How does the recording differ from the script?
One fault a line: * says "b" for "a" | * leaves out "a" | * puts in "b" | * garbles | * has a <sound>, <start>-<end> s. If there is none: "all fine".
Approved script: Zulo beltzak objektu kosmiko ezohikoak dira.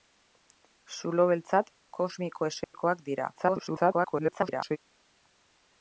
* leaves out "objektu"
* has a dropout, 2.6-2.7 s
* garbles